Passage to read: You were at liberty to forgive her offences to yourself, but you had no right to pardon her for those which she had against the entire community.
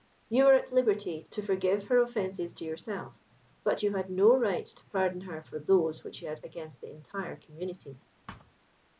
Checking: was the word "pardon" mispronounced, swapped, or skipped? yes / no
no